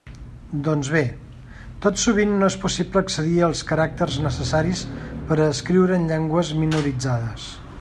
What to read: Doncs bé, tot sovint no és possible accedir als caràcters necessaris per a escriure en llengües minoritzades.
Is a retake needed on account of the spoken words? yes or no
no